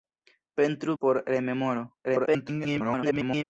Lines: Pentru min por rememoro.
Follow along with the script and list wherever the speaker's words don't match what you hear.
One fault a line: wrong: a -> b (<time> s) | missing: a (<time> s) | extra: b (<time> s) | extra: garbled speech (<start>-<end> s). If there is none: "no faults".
missing: min (0.9 s)
extra: garbled speech (2.0-3.4 s)